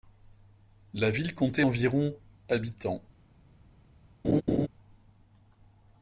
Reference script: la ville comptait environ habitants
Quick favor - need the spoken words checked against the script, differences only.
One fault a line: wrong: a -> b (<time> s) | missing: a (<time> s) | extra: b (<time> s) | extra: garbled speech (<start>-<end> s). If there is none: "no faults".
no faults